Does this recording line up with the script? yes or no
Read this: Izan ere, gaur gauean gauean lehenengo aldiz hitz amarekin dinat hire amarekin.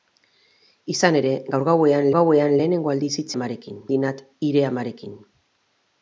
yes